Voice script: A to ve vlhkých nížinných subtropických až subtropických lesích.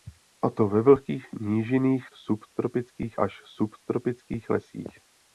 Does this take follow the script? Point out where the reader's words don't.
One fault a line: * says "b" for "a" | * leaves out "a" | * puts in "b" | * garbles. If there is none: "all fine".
all fine